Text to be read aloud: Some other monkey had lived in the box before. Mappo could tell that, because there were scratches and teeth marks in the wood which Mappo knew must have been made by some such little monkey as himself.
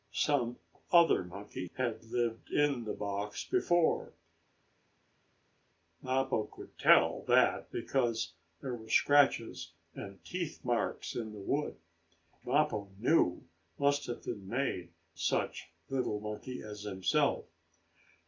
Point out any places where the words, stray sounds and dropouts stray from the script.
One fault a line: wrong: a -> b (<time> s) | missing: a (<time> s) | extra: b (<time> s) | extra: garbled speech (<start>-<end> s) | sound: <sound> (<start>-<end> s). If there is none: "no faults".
missing: which (11.8 s)
missing: by some (14.9 s)